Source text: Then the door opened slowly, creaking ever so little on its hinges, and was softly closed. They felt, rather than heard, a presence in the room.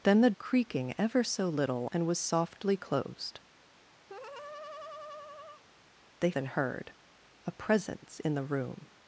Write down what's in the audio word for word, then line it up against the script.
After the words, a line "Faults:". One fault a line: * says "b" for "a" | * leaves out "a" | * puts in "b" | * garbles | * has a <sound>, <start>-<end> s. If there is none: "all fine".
Then the creaking ever so little and was softly closed. They than heard, a presence in the room.
Faults:
* leaves out "door opened slowly"
* leaves out "on its hinges"
* has a laugh, 4.1-5.6 s
* leaves out "felt rather"